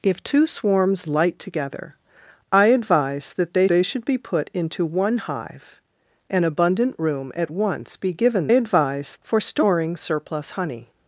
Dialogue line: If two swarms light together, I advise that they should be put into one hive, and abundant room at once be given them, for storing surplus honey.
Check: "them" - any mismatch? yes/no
yes